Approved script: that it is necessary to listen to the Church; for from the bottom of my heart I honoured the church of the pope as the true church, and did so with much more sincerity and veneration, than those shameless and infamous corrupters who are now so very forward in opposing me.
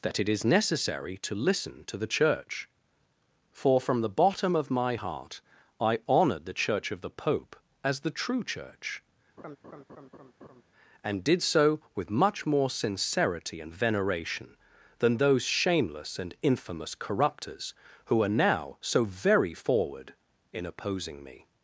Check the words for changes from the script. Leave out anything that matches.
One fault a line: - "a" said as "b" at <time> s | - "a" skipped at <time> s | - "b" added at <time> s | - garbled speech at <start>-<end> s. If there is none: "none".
none